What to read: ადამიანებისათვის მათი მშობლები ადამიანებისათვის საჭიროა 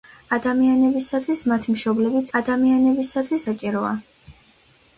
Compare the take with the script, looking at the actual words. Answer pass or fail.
pass